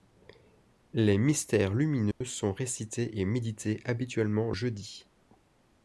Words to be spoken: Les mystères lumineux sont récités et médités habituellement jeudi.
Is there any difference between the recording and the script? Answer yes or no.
no